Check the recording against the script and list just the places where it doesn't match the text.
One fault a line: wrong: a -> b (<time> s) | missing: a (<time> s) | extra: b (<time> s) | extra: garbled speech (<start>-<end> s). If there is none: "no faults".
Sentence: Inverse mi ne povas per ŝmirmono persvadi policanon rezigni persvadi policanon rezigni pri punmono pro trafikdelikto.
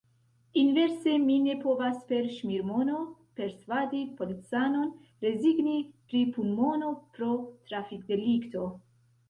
missing: persvadi policanon rezigni (5.8 s)